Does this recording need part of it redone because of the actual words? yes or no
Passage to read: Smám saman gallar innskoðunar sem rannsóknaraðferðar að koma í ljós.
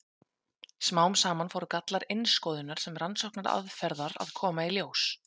yes